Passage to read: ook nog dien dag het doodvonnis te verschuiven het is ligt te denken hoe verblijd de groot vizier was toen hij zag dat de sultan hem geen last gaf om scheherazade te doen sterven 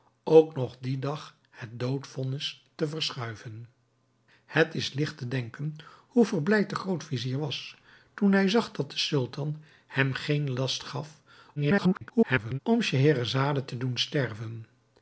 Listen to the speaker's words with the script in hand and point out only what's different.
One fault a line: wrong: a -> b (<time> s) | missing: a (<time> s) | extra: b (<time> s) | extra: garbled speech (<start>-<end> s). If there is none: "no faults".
extra: garbled speech (11.6-12.6 s)